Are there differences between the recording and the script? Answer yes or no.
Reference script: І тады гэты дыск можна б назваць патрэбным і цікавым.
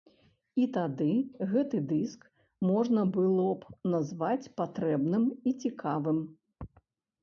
yes